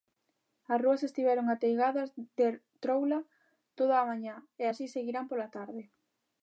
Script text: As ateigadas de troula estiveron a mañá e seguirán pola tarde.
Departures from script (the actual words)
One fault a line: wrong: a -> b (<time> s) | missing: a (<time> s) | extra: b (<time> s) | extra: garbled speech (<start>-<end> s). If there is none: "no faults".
extra: rúas estiveron (0.8 s)
wrong: estiveron -> toda (3.8 s)
extra: así (4.7 s)